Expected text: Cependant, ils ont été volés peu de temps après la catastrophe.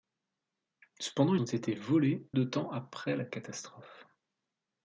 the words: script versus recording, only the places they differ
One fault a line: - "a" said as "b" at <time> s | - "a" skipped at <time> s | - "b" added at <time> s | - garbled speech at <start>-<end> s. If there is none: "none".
- "ils" skipped at 1.4 s
- "peu" skipped at 2.3 s